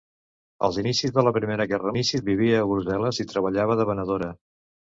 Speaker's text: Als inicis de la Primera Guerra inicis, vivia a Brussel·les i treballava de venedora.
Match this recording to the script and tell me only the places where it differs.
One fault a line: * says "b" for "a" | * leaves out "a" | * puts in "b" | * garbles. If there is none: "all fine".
all fine